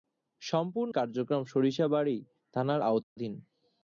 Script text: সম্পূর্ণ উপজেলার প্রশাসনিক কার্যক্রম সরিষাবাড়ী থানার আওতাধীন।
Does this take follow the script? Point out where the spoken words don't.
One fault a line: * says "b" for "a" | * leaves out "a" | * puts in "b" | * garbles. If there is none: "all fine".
* leaves out "উপজেলার প্রশাসনিক"